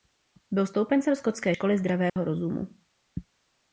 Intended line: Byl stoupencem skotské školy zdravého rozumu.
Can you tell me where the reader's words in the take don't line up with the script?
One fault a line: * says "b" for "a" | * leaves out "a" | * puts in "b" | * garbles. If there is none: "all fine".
all fine